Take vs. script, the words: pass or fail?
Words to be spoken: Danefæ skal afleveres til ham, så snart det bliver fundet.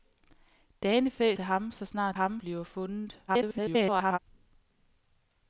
fail